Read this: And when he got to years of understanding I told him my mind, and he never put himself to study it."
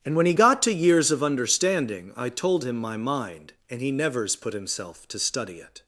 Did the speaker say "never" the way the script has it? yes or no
no